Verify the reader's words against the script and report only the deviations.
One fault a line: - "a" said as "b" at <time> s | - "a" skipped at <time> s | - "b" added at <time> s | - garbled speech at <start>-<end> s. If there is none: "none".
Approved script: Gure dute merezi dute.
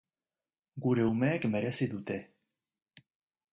- "dute" said as "umeek" at 1.1 s